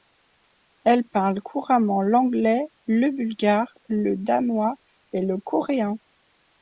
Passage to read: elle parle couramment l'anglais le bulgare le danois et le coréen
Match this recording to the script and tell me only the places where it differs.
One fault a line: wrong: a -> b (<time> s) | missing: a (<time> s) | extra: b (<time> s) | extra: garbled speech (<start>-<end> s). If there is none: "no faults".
no faults